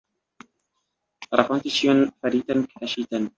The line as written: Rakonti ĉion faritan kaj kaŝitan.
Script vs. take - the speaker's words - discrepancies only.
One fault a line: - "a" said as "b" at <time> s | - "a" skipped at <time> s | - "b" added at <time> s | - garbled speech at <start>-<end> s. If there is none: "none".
- "kaj" skipped at 2.7 s